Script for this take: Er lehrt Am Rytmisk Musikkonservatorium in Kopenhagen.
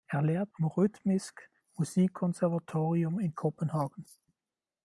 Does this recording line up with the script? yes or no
yes